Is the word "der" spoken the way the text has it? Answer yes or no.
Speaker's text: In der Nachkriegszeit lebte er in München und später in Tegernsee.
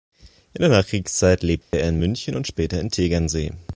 yes